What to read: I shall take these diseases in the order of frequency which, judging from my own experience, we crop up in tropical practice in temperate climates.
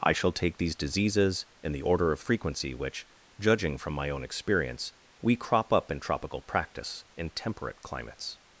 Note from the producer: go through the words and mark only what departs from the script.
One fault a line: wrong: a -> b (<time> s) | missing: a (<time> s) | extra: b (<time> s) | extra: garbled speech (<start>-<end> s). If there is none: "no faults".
no faults